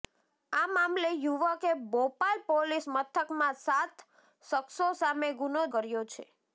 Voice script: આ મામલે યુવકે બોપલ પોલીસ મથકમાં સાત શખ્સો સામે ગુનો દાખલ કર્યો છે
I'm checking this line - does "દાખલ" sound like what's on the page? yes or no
no